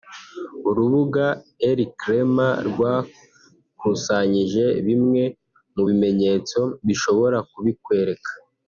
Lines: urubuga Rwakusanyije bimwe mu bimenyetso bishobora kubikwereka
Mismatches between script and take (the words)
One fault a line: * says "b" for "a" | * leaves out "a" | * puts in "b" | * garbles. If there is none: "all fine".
* puts in "Elcrema"